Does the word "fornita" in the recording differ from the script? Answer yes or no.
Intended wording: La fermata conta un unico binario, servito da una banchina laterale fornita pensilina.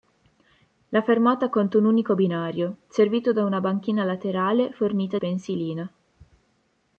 no